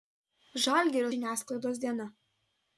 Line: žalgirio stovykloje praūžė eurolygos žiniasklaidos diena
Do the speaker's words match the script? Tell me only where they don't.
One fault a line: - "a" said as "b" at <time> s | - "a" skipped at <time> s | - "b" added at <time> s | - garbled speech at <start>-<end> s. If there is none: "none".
- "stovykloje praūžė eurolygos" skipped at 1.1 s